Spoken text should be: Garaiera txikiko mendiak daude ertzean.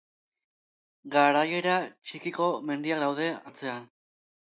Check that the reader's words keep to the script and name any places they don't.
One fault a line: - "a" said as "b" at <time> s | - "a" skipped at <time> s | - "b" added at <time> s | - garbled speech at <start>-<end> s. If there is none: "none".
none